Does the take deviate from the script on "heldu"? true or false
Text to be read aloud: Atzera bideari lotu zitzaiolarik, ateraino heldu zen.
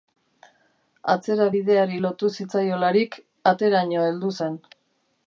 false